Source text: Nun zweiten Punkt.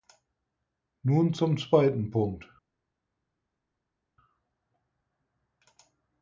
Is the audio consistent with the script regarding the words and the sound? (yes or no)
no